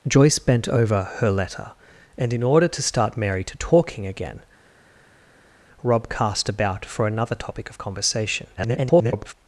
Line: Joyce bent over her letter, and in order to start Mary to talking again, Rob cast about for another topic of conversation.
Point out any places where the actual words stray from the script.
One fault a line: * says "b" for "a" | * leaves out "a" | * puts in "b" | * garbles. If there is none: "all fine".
* garbles